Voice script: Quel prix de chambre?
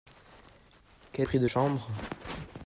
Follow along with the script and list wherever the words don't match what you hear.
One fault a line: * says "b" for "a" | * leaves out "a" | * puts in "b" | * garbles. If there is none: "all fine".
all fine